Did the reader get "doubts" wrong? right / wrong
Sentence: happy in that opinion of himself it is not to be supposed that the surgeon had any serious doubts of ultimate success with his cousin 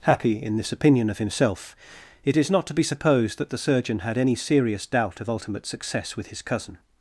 wrong